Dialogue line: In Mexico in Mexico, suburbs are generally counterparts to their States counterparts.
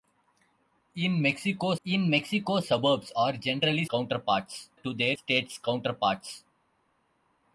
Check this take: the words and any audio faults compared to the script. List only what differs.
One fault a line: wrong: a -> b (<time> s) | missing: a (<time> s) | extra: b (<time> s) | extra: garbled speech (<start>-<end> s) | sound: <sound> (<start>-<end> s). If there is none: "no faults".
no faults